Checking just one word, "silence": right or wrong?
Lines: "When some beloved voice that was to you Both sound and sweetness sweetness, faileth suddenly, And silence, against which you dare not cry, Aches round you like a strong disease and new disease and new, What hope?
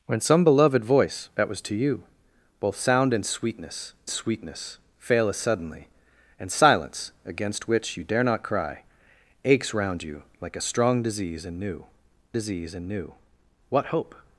right